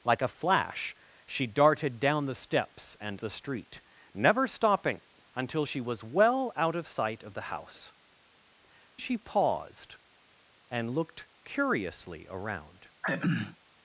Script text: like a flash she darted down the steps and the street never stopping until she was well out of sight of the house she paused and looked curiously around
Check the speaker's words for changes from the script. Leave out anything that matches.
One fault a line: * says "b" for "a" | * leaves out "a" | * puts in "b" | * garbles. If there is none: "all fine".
all fine